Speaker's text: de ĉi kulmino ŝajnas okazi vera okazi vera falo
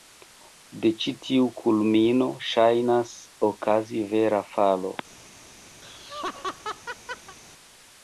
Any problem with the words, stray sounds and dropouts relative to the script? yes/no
yes